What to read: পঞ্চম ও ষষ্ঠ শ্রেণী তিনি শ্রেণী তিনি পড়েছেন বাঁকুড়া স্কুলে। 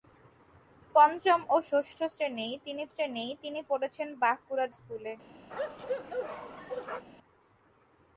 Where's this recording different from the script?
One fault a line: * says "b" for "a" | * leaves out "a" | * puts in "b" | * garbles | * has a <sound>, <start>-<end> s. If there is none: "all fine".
* has a bark, 5.5-7.1 s